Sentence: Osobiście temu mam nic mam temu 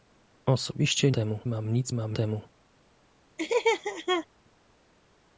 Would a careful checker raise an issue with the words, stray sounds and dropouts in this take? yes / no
yes